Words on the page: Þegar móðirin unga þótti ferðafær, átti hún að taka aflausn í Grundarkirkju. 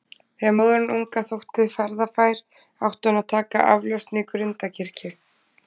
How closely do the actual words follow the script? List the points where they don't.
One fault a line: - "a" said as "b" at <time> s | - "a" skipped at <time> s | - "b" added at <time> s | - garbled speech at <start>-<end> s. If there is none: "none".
none